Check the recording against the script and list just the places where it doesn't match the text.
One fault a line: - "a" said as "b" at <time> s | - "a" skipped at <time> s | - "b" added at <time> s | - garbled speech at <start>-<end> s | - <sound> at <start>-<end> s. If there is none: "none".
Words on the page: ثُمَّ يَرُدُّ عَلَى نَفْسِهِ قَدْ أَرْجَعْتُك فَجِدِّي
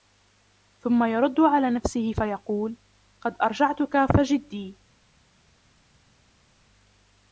- "فَيَقُولُ" added at 2.1 s